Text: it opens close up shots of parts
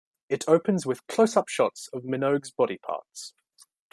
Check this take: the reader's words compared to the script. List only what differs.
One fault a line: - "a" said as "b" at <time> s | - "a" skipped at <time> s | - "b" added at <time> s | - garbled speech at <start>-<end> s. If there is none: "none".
- "with" added at 0.9 s
- "minogue's body" added at 2.0 s